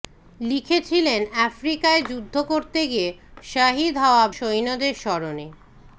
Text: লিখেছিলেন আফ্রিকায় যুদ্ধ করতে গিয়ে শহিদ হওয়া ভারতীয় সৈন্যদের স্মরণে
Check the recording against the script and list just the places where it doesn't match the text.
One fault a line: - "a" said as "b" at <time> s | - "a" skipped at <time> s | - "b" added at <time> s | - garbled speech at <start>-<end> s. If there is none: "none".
- "ভারতীয়" skipped at 4.2 s